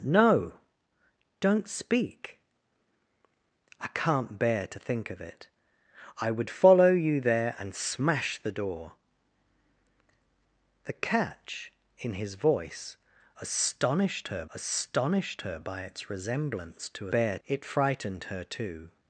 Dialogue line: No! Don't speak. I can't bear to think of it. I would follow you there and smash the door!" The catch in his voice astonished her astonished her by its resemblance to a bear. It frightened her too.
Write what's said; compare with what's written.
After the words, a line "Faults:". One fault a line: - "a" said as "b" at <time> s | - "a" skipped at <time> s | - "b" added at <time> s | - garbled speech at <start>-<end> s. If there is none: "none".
No! Don't speak. I can't bear to think of it. I would follow you there and smash the door!" The catch in his voice astonished her astonished her by its resemblance to a bear. It frightened her too.
Faults:
none